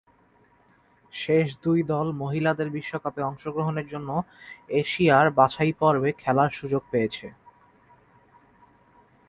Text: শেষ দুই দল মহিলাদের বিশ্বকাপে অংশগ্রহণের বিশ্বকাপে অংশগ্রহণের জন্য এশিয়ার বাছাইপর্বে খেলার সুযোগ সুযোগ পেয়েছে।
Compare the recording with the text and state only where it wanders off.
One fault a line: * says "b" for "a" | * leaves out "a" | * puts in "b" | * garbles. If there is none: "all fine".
* leaves out "বিশ্বকাপে অংশগ্রহণের"
* leaves out "সুযোগ"